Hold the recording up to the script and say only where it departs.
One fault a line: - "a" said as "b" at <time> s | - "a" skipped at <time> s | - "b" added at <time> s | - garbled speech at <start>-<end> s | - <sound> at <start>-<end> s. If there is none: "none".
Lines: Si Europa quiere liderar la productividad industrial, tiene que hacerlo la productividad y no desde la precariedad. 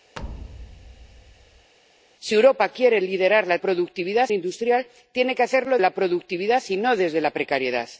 - thud at 0.2-1.7 s